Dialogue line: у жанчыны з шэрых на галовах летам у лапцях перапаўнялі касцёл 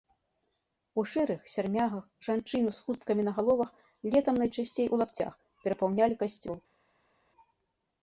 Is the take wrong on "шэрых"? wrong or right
wrong